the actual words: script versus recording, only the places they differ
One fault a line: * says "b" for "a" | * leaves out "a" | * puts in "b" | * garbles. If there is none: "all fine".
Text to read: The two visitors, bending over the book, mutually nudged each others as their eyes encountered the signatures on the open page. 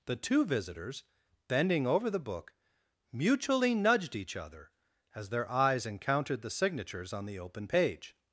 * says "other" for "others"